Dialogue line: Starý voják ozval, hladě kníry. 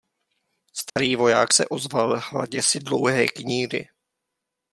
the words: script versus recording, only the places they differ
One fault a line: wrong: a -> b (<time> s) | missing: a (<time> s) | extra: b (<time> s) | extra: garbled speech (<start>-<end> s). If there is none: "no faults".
extra: se (1.5 s)
extra: si dlouhé (2.6 s)